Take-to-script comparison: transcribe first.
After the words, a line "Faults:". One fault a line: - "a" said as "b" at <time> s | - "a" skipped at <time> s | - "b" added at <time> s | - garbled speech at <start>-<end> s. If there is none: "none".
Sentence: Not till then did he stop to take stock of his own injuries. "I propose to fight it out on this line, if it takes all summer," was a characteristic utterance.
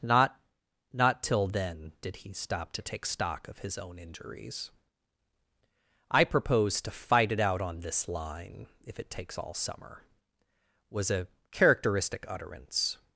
Not not till then did he stop to take stock of his own injuries. "I propose to fight it out on this line, if it takes all summer," was a characteristic utterance.
Faults:
- "not" added at 0.9 s